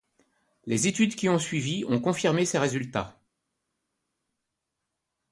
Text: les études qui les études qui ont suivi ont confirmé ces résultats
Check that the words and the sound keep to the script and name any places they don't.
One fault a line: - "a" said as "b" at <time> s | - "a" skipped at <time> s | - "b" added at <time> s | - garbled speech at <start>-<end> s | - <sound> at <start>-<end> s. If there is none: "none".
- "les études qui" skipped at 1.3 s